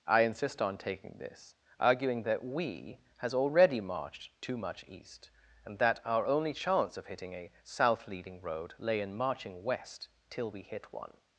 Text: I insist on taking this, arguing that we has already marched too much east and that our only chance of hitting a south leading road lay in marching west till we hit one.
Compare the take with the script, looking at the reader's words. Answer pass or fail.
pass